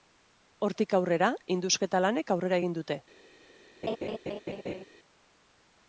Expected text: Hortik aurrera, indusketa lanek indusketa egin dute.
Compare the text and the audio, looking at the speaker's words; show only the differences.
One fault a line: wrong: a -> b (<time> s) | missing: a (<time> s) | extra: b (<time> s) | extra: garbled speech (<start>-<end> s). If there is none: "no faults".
wrong: indusketa -> aurrera (2.4 s)